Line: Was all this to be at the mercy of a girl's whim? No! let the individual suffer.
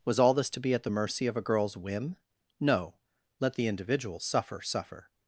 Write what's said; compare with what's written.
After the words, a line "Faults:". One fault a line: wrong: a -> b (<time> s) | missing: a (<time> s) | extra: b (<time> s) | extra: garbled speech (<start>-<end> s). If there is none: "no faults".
Was all this to be at the mercy of a girl's whim? No! let the individual suffer suffer.
Faults:
extra: suffer (4.6 s)